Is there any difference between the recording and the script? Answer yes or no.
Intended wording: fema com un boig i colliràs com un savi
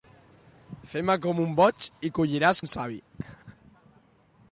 yes